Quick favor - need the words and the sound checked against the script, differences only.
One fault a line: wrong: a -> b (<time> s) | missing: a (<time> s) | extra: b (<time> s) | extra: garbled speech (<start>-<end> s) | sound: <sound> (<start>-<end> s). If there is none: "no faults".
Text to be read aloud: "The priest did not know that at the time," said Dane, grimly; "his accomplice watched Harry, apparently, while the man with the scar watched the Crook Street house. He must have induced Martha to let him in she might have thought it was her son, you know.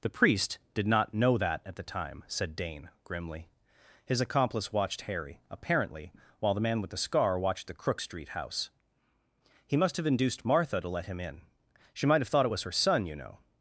no faults